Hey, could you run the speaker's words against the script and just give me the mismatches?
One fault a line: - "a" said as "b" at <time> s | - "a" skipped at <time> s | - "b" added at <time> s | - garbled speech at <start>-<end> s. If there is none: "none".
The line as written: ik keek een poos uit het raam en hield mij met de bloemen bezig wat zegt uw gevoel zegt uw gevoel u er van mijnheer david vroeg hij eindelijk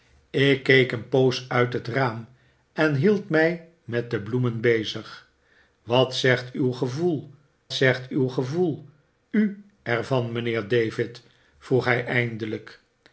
none